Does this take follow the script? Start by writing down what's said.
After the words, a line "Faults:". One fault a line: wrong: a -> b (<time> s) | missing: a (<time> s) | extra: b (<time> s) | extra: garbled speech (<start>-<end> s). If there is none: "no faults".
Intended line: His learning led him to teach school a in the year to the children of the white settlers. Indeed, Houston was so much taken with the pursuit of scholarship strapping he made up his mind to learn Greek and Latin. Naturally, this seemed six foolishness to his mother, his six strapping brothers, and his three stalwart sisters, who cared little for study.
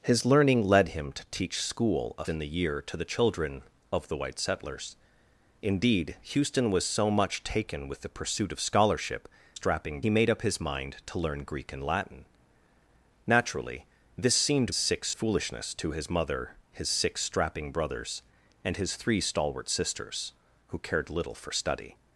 His learning led him to teach school a in the year to the children of the white settlers. Indeed, Houston was so much taken with the pursuit of scholarship strapping he made up his mind to learn Greek and Latin. Naturally, this seemed six foolishness to his mother, his six strapping brothers, and his three stalwart sisters, who cared little for study.
Faults:
no faults